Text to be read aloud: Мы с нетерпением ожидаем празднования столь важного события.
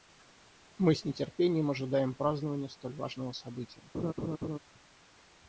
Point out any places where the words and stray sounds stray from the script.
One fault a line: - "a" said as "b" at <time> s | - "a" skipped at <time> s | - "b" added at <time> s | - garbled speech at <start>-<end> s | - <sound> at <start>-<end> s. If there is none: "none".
- laugh at 3.9-4.6 s